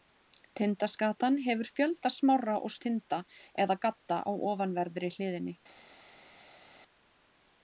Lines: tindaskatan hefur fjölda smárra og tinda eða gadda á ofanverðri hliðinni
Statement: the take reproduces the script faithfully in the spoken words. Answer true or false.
true